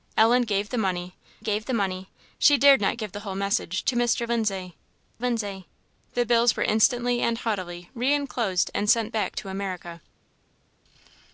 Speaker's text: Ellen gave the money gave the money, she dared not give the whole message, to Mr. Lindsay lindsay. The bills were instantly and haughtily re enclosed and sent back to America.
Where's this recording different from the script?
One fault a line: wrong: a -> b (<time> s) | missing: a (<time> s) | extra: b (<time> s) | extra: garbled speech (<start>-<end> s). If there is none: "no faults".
no faults